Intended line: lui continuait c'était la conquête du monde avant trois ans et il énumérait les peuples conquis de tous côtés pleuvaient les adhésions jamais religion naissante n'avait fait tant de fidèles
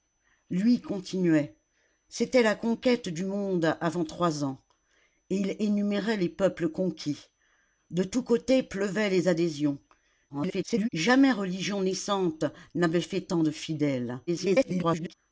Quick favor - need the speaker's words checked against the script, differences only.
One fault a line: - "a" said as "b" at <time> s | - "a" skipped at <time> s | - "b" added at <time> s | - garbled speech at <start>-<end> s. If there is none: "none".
- garbled speech at 10.3-10.9 s
- garbled speech at 14.3-15.1 s